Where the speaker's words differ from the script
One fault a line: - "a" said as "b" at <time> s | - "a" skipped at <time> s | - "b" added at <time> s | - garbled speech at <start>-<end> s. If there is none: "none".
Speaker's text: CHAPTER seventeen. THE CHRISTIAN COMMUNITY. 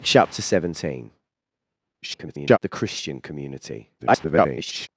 - garbled speech at 2.0-2.6 s
- garbled speech at 4.0-4.9 s